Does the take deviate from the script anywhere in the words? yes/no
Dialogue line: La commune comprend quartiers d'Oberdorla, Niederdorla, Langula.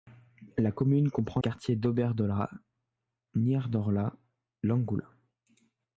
no